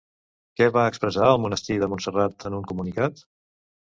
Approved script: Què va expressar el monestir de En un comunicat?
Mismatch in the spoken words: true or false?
true